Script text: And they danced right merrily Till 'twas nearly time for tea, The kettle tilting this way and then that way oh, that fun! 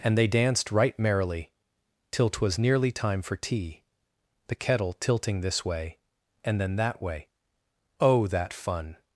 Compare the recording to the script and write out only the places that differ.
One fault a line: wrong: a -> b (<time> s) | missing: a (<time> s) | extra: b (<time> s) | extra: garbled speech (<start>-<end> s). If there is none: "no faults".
no faults